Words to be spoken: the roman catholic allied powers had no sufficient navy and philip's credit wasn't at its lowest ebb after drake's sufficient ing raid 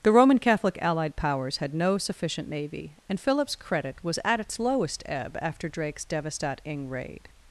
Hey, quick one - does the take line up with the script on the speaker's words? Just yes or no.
no